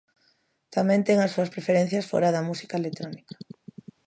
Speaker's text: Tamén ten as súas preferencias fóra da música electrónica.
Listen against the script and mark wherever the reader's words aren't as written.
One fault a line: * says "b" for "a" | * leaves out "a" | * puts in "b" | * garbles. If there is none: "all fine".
all fine